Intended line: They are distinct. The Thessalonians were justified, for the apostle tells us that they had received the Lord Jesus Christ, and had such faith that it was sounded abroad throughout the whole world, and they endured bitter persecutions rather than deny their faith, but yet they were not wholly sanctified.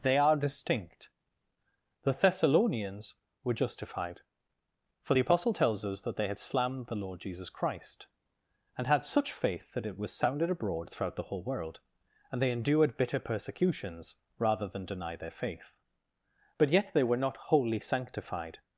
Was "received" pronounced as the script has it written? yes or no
no